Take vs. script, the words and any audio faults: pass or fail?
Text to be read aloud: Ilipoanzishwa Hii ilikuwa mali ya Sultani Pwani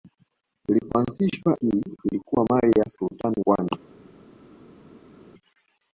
pass